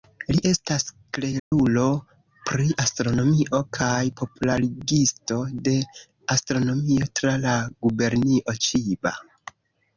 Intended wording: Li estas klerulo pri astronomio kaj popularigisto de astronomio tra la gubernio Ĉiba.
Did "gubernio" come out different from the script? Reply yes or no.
no